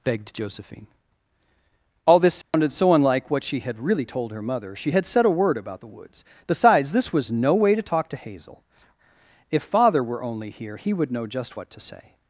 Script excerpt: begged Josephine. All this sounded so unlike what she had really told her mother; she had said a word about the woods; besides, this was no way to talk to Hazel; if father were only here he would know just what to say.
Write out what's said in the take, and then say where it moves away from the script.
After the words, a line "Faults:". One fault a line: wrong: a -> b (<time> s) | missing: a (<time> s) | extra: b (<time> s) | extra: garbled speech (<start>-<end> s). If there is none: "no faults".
begged Josephine. All this sounded so unlike what she had really told her mother; she had said a word about the woods; besides, this was no way to talk to Hazel; if father were only here he would know just what to say.
Faults:
no faults